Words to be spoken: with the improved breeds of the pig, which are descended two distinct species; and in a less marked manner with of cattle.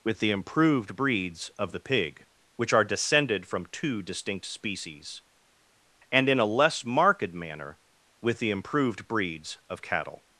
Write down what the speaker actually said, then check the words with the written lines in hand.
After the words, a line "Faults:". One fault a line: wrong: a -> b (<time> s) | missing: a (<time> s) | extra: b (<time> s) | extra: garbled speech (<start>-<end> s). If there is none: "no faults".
with the improved breeds of the pig, which are descended from two distinct species; and in a less marked manner with the improved breeds of cattle.
Faults:
extra: from (3.5 s)
extra: the improved breeds (8.4 s)